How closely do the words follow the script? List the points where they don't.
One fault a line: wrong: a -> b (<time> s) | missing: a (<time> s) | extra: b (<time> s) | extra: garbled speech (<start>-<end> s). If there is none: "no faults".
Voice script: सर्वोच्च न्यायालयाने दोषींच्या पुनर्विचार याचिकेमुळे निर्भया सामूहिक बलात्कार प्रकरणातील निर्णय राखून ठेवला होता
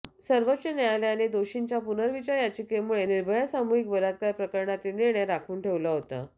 no faults